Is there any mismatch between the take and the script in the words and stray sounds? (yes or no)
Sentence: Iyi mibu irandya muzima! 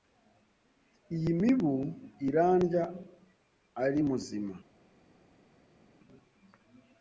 yes